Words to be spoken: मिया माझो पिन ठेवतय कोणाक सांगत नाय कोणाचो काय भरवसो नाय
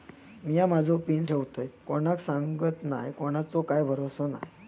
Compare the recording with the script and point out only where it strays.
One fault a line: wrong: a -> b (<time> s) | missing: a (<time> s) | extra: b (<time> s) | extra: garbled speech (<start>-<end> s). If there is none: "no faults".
no faults